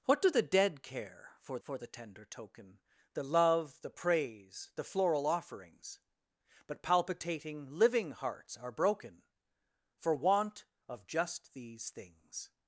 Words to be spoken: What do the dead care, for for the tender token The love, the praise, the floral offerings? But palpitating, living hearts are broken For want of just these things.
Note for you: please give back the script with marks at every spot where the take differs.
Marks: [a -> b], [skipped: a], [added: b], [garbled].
What do the dead care, for for the tender token The love, the praise, the floral offerings? But palpitating, living hearts are broken For want of just these things.